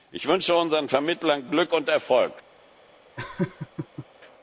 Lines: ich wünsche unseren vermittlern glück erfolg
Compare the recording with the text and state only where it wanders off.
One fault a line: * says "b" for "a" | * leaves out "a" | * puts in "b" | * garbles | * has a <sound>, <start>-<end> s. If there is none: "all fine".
* puts in "und"
* has a laugh, 3.2-4.1 s